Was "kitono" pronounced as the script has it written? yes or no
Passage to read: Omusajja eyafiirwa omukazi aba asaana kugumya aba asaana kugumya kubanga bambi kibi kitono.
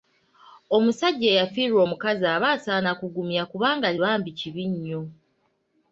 no